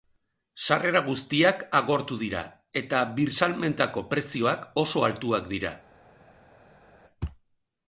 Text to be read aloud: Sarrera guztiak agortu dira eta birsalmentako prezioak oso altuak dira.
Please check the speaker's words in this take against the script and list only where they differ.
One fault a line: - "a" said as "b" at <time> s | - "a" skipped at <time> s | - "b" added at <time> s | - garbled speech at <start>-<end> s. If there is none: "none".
none